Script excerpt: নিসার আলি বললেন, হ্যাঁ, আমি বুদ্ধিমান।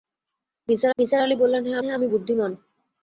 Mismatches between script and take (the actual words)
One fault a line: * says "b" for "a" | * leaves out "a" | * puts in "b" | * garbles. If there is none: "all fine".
* puts in "নিসার"
* puts in "হ্যাঁ"